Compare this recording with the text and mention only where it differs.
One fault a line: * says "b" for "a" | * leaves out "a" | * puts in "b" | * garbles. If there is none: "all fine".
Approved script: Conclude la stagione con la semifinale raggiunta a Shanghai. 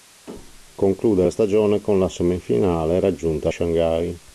all fine